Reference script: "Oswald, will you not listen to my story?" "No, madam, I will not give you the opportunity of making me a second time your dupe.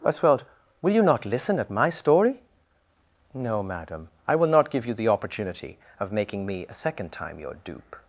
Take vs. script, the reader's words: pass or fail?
fail